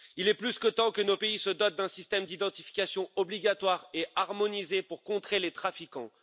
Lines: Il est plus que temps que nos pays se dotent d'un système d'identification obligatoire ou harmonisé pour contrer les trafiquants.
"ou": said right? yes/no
no